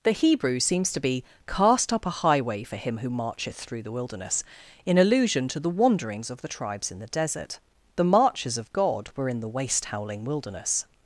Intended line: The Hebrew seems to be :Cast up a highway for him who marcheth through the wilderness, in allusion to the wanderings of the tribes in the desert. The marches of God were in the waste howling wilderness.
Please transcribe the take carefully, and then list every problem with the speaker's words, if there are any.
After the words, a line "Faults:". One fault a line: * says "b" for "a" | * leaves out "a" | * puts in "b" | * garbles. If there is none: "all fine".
The Hebrew seems to be :Cast up a highway for him who marcheth through the wilderness, in allusion to the wanderings of the tribes in the desert. The marches of God were in the waste howling wilderness.
Faults:
all fine